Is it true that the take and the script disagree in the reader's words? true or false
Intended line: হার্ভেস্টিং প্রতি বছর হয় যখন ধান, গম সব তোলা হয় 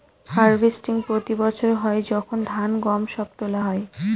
false